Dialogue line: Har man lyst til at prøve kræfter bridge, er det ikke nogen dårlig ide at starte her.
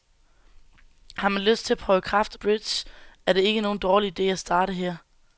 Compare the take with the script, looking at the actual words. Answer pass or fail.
pass